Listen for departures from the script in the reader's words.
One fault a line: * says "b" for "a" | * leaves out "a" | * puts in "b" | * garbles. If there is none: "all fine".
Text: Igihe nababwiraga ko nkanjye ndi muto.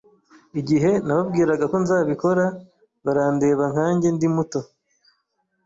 * puts in "nzabikora barandeba"